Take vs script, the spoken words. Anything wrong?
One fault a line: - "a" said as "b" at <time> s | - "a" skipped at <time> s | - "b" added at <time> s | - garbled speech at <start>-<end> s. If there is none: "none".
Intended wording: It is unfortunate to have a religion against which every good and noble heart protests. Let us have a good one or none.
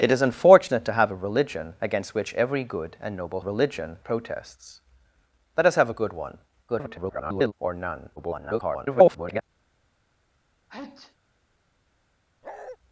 - "heart" said as "religion" at 3.4 s
- garbled speech at 6.7-7.5 s
- garbled speech at 8.2-9.4 s